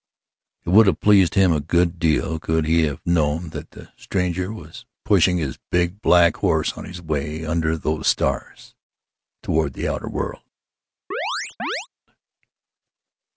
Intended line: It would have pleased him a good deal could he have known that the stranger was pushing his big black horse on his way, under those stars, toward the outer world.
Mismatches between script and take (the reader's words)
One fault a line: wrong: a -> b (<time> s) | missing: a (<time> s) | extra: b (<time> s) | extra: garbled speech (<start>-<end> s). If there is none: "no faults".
no faults